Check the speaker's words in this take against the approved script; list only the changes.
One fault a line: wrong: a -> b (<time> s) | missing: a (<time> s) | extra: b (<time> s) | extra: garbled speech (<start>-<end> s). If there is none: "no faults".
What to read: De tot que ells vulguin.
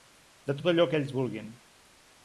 extra: allò (0.7 s)